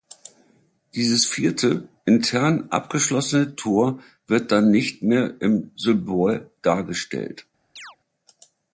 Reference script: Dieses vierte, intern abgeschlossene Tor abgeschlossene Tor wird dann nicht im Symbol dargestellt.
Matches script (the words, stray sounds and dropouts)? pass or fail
fail